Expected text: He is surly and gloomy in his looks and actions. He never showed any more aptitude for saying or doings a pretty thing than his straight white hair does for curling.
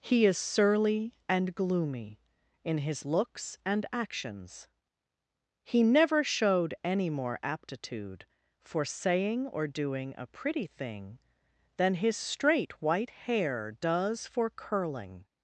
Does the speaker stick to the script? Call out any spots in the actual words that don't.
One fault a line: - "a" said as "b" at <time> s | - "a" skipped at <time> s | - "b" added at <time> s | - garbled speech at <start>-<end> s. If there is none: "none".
- "doings" said as "doing" at 9.7 s